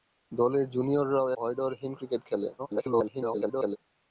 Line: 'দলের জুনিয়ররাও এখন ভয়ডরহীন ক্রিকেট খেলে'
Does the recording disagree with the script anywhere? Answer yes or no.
yes